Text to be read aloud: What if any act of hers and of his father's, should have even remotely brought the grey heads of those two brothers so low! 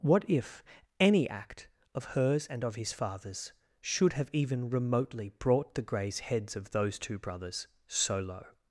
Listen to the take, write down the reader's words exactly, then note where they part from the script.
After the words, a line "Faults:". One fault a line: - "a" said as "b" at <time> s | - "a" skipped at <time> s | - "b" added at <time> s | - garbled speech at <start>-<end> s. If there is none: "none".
What if any act of hers and of his father's, should have even remotely brought the greys heads of those two brothers so low!
Faults:
- "grey" said as "greys" at 5.8 s